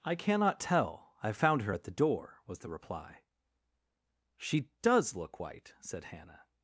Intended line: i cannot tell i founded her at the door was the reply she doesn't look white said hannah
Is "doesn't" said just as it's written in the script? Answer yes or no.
no